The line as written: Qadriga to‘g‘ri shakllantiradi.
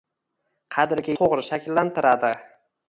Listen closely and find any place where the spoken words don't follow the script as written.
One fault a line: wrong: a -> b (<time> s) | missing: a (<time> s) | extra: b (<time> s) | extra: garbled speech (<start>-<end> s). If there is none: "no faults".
no faults